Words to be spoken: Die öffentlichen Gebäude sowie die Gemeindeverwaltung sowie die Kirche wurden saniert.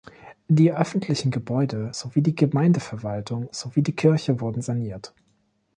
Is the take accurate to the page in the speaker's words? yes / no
yes